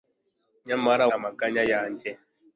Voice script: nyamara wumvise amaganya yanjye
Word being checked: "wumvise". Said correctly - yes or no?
no